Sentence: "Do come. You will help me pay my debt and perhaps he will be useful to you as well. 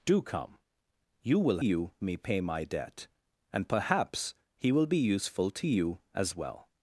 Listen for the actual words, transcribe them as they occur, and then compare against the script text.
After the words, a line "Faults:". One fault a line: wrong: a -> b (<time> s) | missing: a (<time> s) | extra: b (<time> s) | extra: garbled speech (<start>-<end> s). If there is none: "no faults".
"Do come. You will you me pay my debt and perhaps he will be useful to you as well.
Faults:
wrong: help -> you (1.6 s)